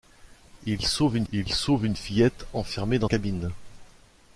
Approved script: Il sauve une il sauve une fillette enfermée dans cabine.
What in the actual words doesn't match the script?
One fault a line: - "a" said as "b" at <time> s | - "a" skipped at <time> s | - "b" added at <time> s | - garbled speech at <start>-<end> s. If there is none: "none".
none